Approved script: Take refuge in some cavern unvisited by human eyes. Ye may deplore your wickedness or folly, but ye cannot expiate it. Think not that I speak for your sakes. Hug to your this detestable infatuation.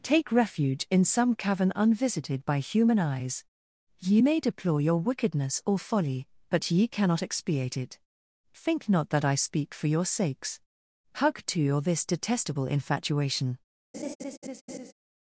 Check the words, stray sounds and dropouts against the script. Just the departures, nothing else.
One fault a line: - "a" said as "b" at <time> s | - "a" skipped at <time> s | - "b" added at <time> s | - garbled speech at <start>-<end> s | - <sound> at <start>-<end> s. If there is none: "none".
- laugh at 13.9-14.9 s